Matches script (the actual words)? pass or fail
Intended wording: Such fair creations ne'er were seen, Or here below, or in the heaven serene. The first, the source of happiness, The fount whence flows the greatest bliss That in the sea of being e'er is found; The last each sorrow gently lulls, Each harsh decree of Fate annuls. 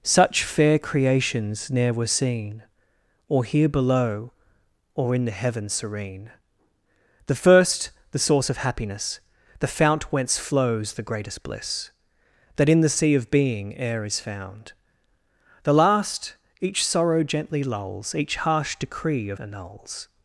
fail